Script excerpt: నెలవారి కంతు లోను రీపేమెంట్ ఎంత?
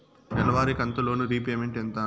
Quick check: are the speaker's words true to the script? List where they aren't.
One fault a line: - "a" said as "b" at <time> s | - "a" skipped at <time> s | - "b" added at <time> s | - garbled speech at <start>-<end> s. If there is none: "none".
none